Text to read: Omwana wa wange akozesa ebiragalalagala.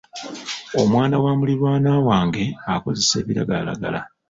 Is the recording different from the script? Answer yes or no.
yes